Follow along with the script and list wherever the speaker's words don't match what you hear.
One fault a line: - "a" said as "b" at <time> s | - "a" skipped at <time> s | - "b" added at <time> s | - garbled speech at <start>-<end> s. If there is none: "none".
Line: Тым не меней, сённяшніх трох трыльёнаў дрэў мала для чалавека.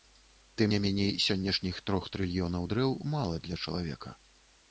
none